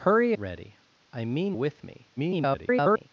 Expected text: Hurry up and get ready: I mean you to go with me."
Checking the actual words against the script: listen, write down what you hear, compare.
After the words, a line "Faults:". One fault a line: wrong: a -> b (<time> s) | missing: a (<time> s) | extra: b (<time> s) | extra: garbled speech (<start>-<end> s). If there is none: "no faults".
Hurry ready: I mean with me." [garbled]
Faults:
missing: up and get (0.3 s)
missing: you to go (1.6 s)
extra: garbled speech (2.2-3.1 s)